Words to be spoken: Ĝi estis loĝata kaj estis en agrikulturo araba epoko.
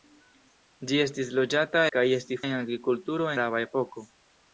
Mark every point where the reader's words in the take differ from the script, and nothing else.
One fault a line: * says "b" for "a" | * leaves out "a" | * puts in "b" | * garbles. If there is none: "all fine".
all fine